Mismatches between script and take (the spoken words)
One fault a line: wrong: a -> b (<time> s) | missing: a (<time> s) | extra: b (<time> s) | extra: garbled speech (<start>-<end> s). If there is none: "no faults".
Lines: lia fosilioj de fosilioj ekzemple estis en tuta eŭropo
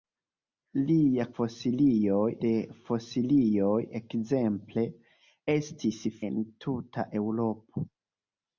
no faults